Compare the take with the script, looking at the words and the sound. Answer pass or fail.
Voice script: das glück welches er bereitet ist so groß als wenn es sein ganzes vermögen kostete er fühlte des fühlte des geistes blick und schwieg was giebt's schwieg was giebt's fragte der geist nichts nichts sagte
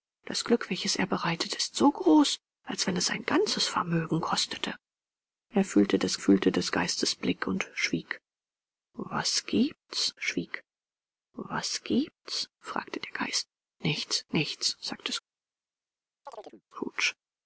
fail